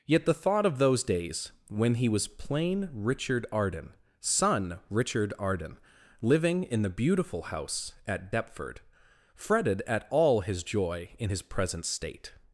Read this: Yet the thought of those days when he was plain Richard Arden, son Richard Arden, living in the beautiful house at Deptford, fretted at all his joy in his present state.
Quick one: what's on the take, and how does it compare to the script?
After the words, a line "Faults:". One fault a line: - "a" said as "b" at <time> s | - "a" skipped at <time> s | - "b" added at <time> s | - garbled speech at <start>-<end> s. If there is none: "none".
Yet the thought of those days when he was plain Richard Arden, son Richard Arden, living in the beautiful house at Deptford, fretted at all his joy in his present state.
Faults:
none